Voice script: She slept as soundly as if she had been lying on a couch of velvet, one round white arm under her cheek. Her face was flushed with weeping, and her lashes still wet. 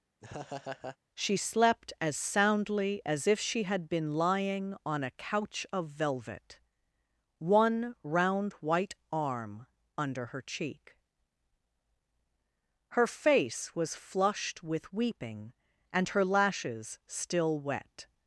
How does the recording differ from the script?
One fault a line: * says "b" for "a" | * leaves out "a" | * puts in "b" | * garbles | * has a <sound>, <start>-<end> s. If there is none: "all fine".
* has a laugh, 0.2-1.0 s